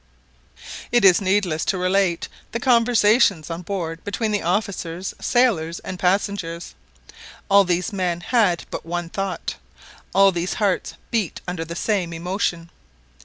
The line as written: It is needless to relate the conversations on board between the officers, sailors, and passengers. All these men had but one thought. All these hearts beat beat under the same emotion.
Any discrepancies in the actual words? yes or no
yes